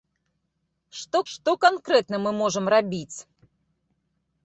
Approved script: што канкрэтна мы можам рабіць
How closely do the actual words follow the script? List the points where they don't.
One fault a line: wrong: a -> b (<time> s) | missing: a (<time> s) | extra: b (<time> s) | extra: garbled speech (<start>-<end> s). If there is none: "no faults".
extra: што (1.3 s)